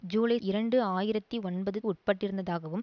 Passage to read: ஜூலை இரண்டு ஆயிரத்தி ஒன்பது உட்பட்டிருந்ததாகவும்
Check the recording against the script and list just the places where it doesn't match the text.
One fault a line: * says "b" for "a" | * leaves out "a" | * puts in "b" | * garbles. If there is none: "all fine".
all fine